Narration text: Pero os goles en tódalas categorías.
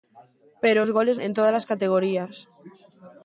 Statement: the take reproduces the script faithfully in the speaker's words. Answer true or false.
true